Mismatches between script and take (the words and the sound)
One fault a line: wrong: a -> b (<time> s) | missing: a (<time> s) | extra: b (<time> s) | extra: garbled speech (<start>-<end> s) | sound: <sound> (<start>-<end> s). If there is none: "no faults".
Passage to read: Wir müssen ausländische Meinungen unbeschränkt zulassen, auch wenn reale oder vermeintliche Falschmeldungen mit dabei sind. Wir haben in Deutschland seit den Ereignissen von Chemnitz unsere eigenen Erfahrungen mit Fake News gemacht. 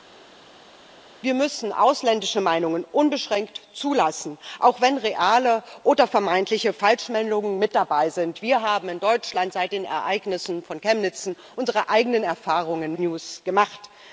missing: mit Fake (13.0 s)